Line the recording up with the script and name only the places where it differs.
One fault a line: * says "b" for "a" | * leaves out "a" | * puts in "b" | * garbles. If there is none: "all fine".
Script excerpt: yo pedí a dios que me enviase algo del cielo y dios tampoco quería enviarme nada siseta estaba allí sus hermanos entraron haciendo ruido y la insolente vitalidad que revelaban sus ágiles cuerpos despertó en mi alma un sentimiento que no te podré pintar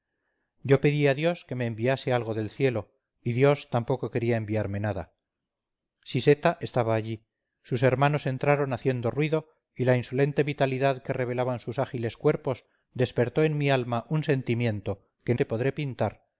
* leaves out "no"